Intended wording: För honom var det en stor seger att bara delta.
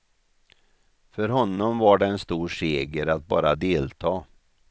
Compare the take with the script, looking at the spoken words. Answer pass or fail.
pass